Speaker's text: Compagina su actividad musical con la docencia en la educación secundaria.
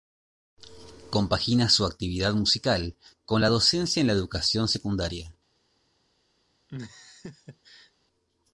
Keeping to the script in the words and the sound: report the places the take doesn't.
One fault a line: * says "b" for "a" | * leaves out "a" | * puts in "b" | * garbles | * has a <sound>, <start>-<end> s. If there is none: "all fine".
* has a laugh, 6.7-7.9 s